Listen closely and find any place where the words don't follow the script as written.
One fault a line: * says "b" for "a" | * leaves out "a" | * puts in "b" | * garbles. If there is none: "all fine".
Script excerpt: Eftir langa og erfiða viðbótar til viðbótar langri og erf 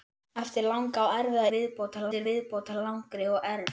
all fine